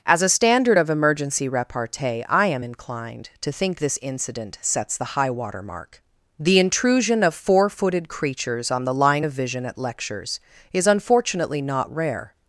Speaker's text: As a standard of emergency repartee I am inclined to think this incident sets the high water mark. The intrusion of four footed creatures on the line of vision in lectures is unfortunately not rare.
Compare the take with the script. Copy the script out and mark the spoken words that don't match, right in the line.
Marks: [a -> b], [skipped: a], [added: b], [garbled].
As a standard of emergency repartee I am inclined to think this incident sets the high water mark. The intrusion of four footed creatures on the line of vision [in -> at] lectures is unfortunately not rare.